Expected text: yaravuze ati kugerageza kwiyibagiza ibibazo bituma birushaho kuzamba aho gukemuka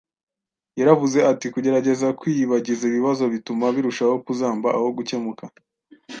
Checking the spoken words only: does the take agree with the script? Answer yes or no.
yes